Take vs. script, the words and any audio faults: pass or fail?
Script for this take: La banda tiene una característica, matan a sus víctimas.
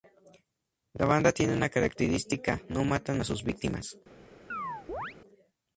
fail